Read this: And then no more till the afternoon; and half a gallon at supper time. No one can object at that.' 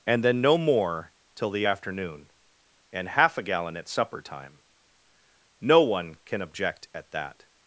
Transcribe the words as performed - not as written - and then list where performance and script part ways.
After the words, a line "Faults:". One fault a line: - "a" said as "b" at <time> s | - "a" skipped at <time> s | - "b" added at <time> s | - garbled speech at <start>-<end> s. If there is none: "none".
And then no more till the afternoon; and half a gallon at supper time. No one can object at that.'
Faults:
none